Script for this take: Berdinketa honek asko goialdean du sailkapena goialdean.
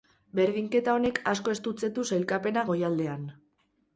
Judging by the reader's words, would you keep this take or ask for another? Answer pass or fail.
fail